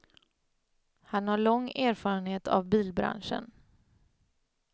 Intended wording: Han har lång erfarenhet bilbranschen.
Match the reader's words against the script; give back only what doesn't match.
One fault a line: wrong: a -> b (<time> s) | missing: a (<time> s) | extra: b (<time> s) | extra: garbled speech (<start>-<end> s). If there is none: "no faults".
extra: av (2.5 s)